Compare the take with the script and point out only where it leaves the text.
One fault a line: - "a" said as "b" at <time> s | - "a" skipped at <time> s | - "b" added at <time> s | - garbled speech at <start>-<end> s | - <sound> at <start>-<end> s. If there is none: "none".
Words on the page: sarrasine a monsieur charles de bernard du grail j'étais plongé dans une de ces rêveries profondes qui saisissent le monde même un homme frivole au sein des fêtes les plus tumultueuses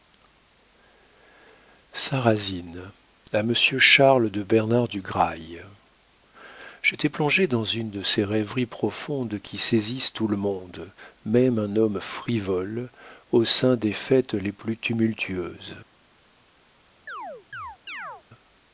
- "tout" added at 10.1 s
- chirp at 17.1-18.2 s